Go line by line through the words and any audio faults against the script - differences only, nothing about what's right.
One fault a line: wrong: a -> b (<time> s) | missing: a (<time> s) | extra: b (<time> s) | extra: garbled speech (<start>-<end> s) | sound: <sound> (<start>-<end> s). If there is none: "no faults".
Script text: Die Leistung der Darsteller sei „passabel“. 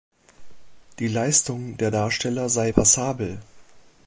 no faults